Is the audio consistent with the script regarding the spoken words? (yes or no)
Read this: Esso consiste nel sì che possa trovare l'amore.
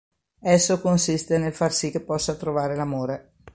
no